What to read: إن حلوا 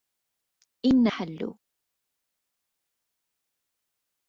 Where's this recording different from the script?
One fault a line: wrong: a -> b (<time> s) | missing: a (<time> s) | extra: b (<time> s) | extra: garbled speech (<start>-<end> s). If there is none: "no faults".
no faults